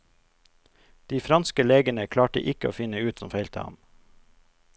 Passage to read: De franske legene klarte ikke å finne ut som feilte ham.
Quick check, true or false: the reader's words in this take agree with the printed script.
true